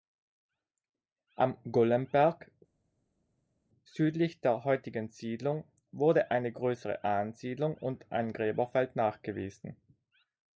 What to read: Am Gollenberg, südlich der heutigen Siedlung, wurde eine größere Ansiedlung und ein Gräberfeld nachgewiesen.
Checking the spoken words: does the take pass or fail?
pass